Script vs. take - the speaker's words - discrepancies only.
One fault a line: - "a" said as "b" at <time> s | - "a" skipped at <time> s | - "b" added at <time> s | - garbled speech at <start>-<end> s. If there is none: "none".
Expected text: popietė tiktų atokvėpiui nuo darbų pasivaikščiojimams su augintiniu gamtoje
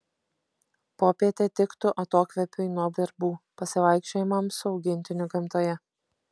none